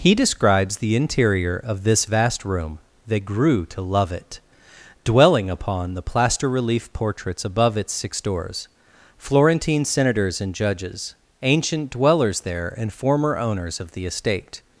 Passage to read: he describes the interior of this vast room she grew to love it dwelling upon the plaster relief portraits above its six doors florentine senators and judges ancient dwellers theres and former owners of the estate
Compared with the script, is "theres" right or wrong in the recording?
wrong